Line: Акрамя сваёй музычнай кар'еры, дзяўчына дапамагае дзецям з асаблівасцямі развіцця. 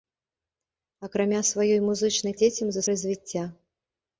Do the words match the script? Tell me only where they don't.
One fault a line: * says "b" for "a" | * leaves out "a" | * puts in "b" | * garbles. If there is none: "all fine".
* leaves out "кар'еры дзяўчына дапамагае"
* leaves out "асаблівасцямі"